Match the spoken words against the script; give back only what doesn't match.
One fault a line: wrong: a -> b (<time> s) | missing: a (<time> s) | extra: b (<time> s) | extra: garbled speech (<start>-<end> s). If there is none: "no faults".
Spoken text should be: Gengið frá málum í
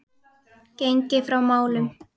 no faults